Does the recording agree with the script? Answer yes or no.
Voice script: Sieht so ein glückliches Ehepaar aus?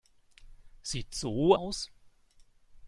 no